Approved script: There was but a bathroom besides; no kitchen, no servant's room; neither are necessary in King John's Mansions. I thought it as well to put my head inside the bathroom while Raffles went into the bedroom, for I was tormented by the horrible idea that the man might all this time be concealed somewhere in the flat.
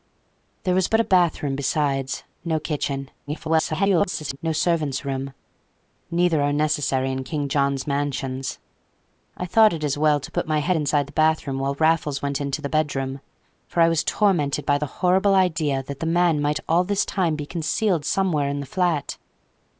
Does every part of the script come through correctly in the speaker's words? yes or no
no